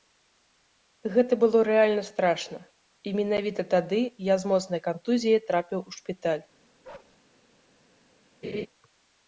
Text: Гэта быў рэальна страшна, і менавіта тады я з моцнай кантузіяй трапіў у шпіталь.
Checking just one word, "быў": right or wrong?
wrong